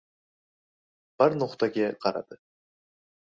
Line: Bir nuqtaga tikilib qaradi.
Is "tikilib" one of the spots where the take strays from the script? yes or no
yes